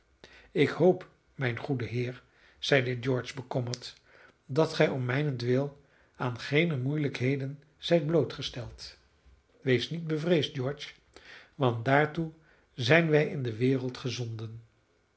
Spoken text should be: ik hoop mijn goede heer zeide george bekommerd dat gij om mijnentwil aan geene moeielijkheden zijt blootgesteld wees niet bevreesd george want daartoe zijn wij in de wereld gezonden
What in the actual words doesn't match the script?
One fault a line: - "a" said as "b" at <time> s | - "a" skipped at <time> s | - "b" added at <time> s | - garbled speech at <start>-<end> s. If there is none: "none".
none